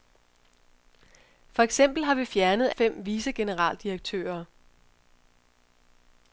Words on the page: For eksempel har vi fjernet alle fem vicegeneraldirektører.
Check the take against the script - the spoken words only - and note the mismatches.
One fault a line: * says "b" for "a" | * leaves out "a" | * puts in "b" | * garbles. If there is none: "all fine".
* leaves out "alle"